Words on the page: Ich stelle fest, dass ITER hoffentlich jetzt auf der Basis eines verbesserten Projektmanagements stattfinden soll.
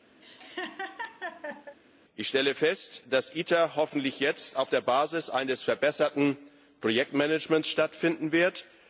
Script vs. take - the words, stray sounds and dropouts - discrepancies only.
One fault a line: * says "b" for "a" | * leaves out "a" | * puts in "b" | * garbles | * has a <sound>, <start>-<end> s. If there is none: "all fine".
* has a laugh, 0.2-1.8 s
* says "wird" for "soll"